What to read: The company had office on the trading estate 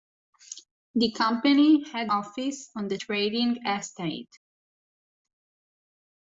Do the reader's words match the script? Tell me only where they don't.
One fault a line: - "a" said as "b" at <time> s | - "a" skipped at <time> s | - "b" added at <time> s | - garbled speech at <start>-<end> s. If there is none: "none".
none